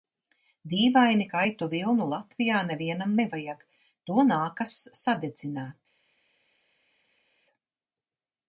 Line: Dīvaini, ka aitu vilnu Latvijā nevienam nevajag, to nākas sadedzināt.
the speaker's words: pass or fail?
pass